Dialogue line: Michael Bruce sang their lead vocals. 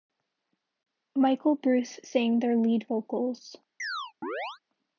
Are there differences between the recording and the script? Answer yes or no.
no